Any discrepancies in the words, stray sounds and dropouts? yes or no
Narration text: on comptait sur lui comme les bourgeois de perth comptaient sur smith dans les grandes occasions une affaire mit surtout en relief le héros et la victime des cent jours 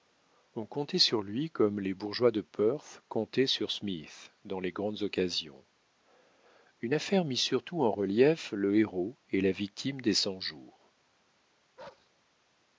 yes